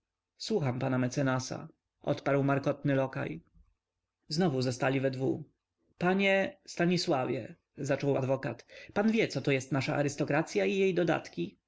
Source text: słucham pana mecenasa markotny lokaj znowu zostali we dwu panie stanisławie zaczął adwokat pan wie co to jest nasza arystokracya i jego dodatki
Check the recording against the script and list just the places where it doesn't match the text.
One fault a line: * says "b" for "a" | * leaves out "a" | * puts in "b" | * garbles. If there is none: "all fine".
* puts in "odparł"
* says "jej" for "jego"